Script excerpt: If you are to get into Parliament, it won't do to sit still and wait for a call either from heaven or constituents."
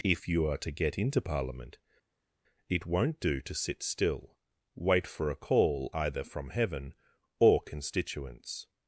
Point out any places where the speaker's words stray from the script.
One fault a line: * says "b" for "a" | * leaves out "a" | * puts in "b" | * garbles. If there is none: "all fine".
* leaves out "and"